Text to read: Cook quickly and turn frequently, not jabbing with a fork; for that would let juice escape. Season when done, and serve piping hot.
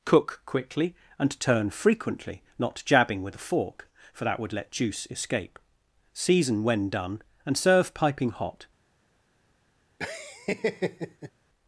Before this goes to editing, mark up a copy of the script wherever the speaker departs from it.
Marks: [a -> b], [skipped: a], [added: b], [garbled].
Cook quickly and turn frequently, not jabbing with a fork; for that would let juice escape. Season when done, and serve piping hot.